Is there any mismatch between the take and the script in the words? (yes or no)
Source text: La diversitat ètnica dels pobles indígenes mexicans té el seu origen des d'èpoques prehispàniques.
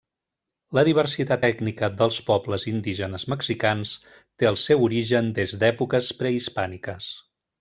no